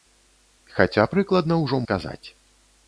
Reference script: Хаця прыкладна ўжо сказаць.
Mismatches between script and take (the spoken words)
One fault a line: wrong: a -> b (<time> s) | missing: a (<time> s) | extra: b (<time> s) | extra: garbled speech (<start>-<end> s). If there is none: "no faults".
no faults